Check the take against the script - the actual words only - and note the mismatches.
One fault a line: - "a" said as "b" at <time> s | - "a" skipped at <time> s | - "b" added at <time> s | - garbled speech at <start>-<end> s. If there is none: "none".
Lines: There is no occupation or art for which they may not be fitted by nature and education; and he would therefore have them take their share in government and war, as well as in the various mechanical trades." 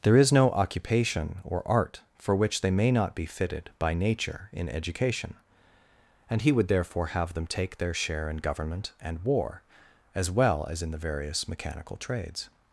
- "and" said as "in" at 4.5 s